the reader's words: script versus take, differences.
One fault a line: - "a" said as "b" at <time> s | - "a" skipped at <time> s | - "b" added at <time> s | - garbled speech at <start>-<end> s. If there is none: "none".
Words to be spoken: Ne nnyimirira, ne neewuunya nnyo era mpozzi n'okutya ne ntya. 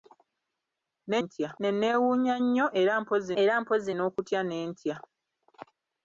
- "nnyimirira" said as "ntya" at 1.2 s
- "era mpozzi" added at 3.4 s